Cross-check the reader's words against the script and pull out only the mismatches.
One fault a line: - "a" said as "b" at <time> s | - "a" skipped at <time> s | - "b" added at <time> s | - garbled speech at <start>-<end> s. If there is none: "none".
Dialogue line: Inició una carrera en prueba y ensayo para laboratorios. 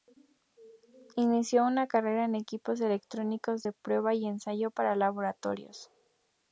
- "equipos electrónicos de" added at 2.3 s